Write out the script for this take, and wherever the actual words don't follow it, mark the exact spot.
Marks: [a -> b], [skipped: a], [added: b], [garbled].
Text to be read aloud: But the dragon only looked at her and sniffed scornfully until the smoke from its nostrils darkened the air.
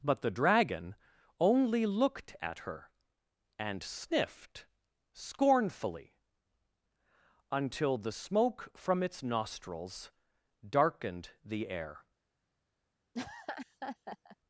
But the dragon only looked at her and sniffed scornfully until the smoke from its nostrils darkened the air.